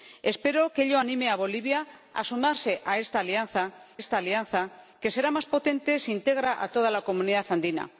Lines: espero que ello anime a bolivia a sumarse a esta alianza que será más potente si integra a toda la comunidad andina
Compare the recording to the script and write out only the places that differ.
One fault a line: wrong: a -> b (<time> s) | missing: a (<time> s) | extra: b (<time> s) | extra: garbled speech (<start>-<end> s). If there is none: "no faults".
extra: esta alianza (4.0 s)